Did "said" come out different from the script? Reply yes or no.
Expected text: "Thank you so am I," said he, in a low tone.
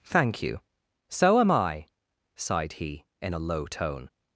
yes